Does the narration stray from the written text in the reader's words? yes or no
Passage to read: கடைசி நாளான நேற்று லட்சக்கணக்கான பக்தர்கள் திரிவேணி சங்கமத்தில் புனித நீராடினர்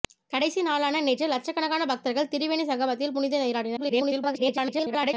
yes